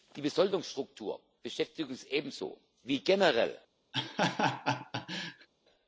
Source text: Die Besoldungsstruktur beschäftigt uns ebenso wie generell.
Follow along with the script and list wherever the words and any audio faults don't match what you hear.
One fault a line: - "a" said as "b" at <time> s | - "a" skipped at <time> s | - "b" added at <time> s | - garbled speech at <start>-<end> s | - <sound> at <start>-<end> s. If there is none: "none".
- laugh at 3.9-5.5 s